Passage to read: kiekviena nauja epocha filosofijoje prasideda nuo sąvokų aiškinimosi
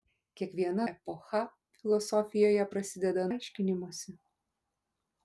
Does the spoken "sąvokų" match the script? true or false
false